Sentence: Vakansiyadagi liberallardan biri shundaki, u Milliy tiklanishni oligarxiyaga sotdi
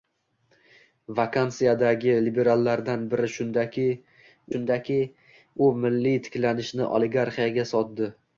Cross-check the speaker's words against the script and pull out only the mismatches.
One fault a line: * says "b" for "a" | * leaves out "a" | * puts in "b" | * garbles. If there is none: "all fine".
* puts in "shundaki"